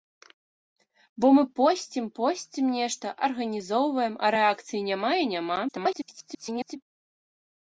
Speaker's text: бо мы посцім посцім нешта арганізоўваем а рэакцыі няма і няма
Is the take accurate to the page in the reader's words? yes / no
no